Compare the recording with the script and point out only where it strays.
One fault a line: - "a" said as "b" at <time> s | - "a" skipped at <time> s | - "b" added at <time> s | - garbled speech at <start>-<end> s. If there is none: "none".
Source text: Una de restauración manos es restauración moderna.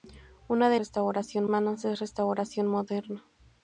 none